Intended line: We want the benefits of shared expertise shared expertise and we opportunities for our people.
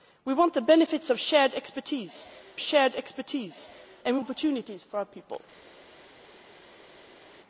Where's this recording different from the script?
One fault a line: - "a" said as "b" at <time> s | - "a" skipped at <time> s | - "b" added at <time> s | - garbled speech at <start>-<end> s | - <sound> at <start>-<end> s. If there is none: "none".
none